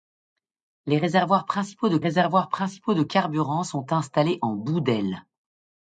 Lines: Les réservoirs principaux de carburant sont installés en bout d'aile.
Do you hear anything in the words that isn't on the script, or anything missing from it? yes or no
yes